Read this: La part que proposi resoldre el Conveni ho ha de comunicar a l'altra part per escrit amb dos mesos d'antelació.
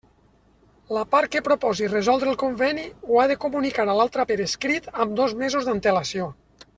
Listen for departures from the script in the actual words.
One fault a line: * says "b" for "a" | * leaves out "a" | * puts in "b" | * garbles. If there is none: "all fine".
* leaves out "part"